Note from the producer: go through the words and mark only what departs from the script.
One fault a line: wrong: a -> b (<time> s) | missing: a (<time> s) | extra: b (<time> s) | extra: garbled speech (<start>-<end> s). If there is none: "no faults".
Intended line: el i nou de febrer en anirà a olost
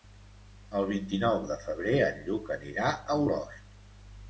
extra: vint (0.9 s)
extra: lluc (2.3 s)